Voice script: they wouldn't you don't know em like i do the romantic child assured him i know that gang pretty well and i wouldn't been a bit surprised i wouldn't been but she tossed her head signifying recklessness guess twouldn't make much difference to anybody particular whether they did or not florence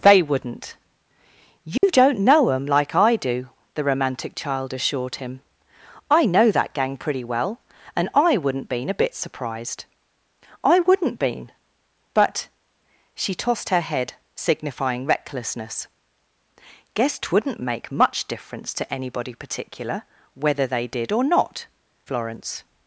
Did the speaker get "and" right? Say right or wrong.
right